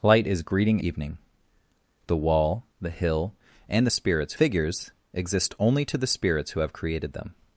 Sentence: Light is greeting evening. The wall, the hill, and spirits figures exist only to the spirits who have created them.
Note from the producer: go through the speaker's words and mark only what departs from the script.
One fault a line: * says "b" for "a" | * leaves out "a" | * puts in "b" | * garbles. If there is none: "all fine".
all fine